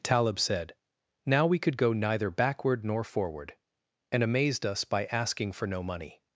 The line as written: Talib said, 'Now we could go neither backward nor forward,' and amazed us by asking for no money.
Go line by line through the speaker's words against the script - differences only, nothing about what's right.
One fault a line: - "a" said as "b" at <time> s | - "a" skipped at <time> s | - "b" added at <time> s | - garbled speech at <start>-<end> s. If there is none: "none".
none